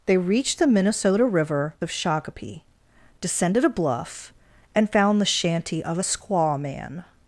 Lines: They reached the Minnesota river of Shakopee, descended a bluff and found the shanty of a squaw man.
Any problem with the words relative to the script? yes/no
no